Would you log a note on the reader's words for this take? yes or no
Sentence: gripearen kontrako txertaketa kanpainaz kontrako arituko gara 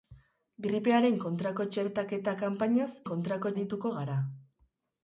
no